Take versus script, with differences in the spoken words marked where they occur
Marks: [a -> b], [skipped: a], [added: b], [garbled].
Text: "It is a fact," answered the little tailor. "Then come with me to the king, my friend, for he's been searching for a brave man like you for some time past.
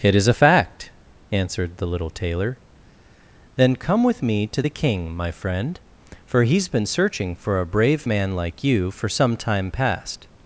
"It is a fact," answered the little tailor. "Then come with me to the king, my friend, for he's been searching for a brave man like you for some time past.